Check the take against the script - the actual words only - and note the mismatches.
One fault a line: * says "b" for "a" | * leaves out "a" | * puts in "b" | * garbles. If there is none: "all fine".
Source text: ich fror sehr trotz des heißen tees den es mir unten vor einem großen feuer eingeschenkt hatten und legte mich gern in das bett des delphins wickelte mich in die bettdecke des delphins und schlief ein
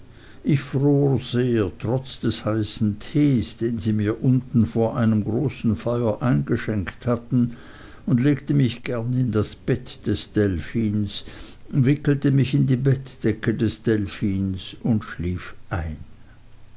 * says "sie" for "es"